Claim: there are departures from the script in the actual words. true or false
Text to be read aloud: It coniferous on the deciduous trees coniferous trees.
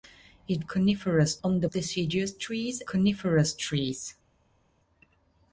false